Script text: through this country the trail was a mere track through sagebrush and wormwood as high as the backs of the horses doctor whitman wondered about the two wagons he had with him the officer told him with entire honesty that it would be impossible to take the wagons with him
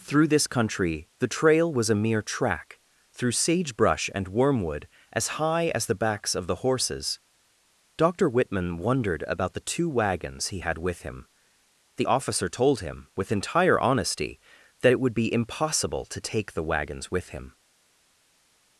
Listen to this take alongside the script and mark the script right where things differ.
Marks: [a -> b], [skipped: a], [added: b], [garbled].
through this country the trail was a mere track through sagebrush and wormwood as high as the backs of the horses doctor whitman wondered about the two wagons he had with him the officer told him with entire honesty that it would be impossible to take the wagons with him